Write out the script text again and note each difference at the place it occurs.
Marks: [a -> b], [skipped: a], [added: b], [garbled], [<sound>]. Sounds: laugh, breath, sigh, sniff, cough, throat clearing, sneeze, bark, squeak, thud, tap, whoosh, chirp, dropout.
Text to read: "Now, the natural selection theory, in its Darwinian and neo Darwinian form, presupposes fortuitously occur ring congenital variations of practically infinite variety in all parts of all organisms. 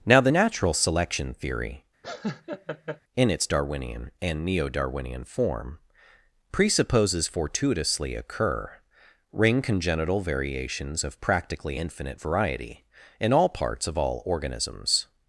"Now, the natural selection theory, [laugh] in its Darwinian and neo Darwinian form, presupposes fortuitously occur ring congenital variations of practically infinite variety in all parts of all organisms.